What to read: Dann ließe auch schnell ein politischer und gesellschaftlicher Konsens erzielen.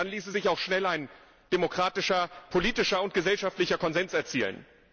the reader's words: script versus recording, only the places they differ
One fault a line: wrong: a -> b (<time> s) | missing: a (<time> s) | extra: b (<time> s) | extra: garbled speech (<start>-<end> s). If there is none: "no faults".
extra: sich (0.3 s)
extra: demokratischer (1.5 s)